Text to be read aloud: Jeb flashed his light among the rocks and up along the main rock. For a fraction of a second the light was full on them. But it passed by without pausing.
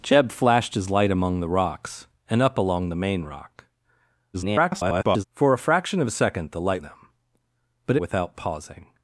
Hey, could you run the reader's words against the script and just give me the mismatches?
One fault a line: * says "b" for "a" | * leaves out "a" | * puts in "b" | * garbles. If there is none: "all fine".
* garbles
* leaves out "was full on"
* leaves out "it passed by"